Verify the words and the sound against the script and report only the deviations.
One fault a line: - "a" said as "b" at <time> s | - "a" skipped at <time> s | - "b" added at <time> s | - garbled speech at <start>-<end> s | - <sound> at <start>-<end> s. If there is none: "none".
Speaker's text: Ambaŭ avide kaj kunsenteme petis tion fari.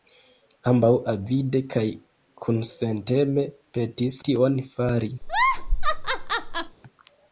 - laugh at 5.2-6.8 s